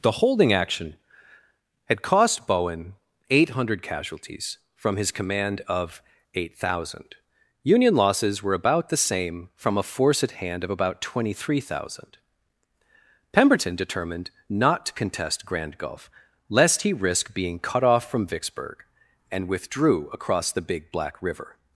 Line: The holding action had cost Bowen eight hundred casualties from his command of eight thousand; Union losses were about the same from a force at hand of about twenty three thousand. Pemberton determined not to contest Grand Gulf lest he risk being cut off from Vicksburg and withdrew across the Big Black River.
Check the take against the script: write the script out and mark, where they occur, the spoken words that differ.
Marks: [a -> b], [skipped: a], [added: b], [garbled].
The holding action had cost Bowen eight hundred casualties from his command of eight thousand; Union losses were about the same from a force at hand of about twenty three thousand. Pemberton determined not to contest Grand Gulf lest he risk being cut off from Vicksburg and withdrew across the Big Black River.